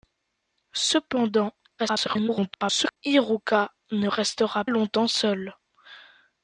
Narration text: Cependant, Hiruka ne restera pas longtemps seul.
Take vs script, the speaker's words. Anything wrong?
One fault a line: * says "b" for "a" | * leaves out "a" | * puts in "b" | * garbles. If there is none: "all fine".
* garbles
* leaves out "pas"